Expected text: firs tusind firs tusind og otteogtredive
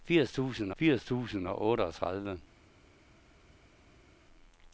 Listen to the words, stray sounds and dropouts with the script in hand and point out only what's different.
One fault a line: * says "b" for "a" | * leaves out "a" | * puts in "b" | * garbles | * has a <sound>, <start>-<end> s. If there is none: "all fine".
all fine